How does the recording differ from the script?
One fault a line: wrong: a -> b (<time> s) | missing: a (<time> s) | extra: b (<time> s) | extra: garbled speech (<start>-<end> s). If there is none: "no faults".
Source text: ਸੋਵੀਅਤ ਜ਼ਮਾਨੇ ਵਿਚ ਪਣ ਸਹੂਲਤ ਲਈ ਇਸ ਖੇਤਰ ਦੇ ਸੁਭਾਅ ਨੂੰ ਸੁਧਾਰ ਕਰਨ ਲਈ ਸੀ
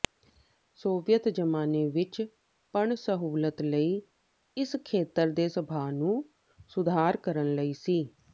no faults